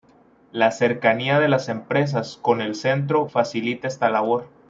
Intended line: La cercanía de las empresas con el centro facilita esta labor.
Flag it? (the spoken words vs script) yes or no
no